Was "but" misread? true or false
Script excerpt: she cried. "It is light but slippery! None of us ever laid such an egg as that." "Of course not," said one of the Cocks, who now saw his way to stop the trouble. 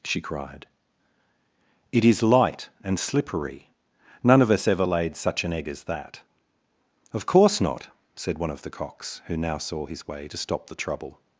true